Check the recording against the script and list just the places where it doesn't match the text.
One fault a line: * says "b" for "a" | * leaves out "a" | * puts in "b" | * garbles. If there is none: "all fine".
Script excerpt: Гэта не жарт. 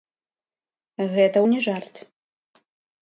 all fine